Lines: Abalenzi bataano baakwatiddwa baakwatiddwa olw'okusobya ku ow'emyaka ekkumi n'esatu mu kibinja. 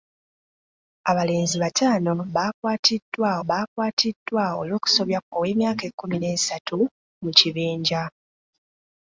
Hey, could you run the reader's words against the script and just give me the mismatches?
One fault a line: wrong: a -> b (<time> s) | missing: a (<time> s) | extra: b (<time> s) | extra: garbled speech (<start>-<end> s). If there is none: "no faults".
no faults